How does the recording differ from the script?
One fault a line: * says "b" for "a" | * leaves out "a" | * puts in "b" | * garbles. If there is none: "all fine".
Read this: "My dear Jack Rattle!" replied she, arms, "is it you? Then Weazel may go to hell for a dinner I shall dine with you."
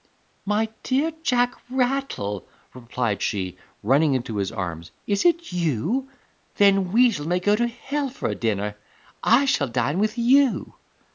* puts in "running into his"